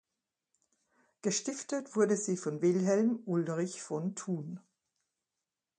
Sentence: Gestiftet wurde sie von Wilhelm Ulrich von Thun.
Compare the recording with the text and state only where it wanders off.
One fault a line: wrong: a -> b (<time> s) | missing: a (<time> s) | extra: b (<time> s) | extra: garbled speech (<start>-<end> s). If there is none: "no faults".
no faults